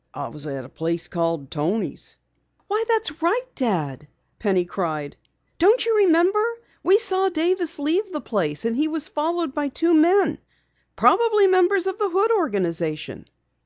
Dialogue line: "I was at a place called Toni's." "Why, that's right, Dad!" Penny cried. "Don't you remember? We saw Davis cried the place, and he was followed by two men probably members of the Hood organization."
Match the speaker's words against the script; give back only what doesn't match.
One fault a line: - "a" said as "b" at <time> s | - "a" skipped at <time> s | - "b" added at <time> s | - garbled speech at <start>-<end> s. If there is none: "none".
- "cried" said as "leave" at 7.8 s